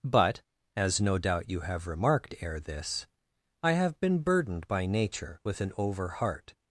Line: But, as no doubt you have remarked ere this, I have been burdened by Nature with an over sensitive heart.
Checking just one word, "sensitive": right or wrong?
wrong